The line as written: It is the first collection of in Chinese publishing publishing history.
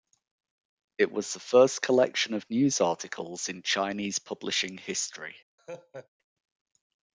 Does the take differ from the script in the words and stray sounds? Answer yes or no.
yes